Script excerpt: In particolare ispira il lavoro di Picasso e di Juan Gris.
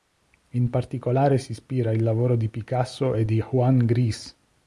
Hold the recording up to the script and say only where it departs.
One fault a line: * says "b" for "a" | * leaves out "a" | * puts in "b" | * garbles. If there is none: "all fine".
* puts in "si"